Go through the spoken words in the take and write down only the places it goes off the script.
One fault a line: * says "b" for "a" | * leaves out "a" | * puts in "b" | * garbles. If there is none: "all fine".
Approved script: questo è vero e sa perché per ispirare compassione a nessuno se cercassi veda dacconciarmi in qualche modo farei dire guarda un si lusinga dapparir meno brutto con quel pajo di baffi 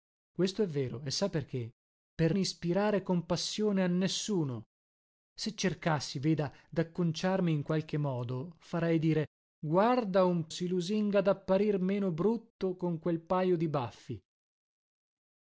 all fine